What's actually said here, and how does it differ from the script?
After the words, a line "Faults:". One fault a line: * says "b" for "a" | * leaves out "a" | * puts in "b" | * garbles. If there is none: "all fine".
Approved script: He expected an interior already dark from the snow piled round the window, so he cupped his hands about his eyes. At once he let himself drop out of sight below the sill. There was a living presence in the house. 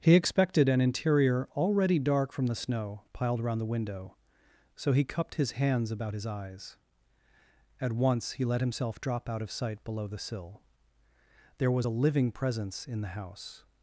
He expected an interior already dark from the snow piled around the window, so he cupped his hands about his eyes. At once he let himself drop out of sight below the sill. There was a living presence in the house.
Faults:
* says "around" for "round"